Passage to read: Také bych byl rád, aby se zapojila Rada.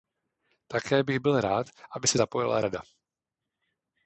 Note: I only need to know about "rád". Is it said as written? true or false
true